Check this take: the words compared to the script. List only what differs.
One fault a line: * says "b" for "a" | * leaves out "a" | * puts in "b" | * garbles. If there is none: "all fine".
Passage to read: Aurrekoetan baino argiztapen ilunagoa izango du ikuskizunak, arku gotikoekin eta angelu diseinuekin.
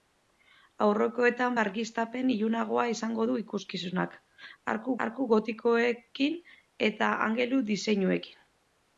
* leaves out "baino"
* puts in "arku"